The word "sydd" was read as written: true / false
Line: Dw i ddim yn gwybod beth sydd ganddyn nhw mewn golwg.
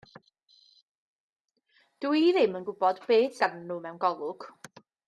false